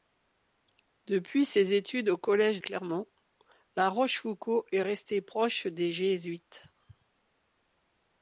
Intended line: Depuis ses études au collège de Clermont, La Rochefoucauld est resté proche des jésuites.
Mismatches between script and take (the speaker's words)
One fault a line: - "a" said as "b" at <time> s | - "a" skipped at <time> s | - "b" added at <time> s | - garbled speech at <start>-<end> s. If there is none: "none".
- "de" skipped at 2.6 s